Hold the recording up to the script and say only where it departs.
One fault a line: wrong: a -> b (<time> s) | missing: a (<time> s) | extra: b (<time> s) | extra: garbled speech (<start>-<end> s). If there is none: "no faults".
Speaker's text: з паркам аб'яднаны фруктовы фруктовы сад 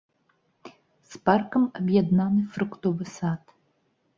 missing: фруктовы (3.0 s)